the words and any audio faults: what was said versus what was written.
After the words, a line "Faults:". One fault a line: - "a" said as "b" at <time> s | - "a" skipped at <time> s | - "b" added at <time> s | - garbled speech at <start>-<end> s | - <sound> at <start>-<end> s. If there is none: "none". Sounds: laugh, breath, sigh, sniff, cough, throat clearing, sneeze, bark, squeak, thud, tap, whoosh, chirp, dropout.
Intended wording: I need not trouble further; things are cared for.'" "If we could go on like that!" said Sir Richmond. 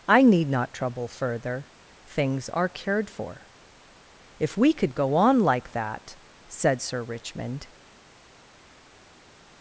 I need not trouble further; things are cared for.'" "If we could go on like that!" said Sir Richmond.
Faults:
none